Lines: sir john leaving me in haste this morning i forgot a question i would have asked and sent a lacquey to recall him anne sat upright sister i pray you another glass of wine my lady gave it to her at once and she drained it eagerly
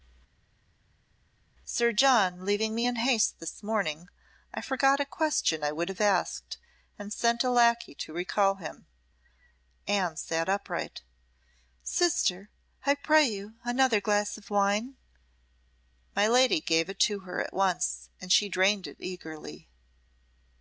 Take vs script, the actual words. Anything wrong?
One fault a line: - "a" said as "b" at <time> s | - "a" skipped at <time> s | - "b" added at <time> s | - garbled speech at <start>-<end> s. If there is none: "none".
none